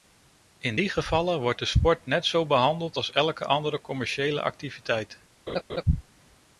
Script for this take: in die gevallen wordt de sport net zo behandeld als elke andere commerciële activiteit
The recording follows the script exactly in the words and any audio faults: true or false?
false